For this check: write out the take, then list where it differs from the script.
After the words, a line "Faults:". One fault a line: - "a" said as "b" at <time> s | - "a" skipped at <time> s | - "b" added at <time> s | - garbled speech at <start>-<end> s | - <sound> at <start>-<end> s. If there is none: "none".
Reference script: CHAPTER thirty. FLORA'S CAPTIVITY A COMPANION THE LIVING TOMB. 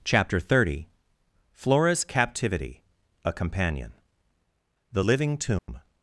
CHAPTER thirty. FLORA'S CAPTIVITY A COMPANION THE LIVING TOMB.
Faults:
- dropout at 5.6-5.7 s